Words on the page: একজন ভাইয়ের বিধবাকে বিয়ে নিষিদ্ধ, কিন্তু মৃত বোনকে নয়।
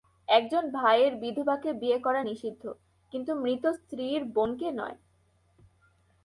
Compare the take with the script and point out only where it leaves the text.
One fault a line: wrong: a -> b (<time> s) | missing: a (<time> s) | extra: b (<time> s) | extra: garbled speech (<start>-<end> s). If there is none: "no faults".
extra: করা (2.0 s)
extra: স্ত্রীর (3.8 s)